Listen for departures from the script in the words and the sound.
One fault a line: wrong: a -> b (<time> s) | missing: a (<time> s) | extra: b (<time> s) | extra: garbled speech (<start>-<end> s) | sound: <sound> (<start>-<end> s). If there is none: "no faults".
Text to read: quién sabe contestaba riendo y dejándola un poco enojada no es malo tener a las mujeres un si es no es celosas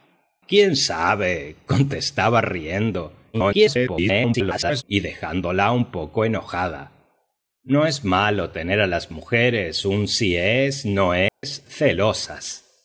extra: garbled speech (3.3-4.8 s)
sound: dropout (11.3-11.4 s)